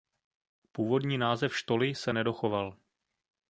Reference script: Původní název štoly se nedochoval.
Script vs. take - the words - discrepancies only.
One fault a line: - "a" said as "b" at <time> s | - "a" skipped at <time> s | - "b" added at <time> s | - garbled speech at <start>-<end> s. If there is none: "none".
none